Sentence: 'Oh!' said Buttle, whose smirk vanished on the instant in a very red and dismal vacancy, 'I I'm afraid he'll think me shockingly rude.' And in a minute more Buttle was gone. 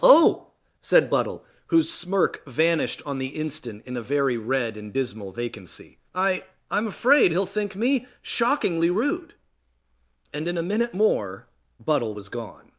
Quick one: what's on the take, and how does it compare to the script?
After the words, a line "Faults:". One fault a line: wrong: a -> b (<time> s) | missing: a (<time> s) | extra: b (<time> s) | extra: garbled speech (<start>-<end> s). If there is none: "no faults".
'Oh!' said Buttle, whose smirk vanished on the instant in a very red and dismal vacancy, 'I I'm afraid he'll think me shockingly rude.' And in a minute more Buttle was gone.
Faults:
no faults